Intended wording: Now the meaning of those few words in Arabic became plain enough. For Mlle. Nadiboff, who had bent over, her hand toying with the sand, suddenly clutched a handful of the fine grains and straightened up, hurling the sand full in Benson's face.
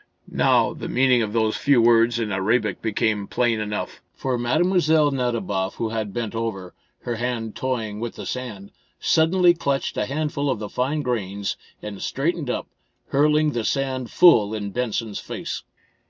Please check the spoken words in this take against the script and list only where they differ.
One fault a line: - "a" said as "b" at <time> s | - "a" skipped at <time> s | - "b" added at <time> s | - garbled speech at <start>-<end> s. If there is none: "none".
none